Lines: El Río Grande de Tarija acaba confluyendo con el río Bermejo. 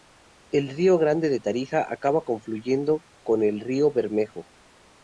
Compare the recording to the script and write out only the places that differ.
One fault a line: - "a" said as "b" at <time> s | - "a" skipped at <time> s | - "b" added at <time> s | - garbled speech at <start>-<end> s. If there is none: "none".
none